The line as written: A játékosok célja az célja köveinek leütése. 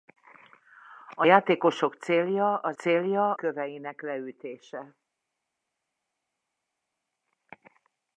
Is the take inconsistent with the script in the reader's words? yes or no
no